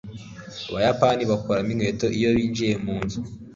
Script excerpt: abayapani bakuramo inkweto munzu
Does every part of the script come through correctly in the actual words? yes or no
no